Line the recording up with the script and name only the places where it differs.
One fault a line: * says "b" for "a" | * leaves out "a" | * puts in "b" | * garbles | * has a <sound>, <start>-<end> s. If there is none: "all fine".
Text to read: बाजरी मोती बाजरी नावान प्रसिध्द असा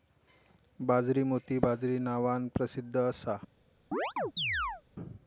* has a chirp, 3.9-4.8 s